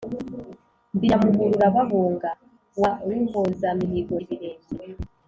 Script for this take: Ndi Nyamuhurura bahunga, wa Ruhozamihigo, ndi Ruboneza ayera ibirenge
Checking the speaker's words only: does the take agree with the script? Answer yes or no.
no